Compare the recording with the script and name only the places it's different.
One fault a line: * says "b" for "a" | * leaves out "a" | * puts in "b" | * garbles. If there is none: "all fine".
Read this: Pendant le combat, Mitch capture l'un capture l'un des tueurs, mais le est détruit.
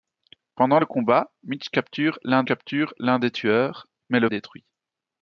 all fine